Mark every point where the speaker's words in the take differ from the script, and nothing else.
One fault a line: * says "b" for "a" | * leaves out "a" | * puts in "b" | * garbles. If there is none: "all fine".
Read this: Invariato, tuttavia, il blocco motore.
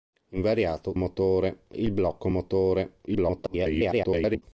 * says "motore" for "tuttavia"
* garbles